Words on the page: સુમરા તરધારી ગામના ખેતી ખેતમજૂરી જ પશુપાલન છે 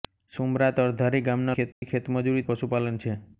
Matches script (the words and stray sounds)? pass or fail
fail